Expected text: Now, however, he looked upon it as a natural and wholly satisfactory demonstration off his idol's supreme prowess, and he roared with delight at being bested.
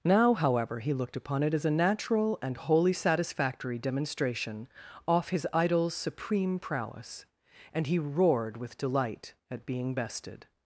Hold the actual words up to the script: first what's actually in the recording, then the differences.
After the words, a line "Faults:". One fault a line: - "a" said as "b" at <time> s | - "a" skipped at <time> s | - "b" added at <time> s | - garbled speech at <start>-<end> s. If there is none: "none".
Now, however, he looked upon it as a natural and wholly satisfactory demonstration off his idol's supreme prowess, and he roared with delight at being bested.
Faults:
none